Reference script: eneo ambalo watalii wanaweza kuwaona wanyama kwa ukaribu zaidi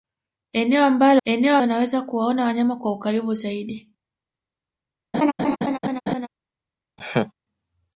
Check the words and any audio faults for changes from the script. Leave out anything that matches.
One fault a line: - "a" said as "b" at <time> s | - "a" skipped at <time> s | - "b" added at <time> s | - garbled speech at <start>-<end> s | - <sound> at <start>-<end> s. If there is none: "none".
- "watalii" said as "eneo" at 1.2 s
- laugh at 5.1-6.3 s
- laugh at 7.0-7.3 s